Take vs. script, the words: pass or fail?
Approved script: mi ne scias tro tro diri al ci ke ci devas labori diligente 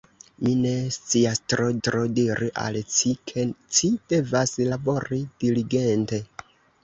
pass